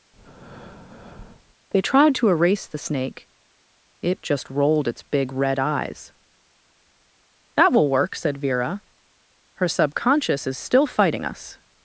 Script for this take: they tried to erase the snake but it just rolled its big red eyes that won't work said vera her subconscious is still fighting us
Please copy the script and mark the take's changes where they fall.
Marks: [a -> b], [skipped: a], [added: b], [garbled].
they tried to erase the snake [skipped: but] it just rolled its big red eyes that [won't -> will] work said vera her subconscious is still fighting us